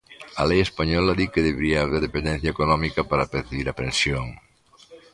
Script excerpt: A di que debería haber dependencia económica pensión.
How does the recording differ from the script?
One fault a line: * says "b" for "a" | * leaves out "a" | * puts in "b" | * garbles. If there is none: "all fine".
* puts in "lei española"
* puts in "para percibir a"